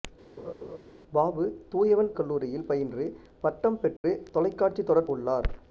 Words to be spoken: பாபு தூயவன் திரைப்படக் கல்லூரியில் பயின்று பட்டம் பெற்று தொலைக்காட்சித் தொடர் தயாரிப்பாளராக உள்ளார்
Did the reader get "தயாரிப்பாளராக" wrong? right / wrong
wrong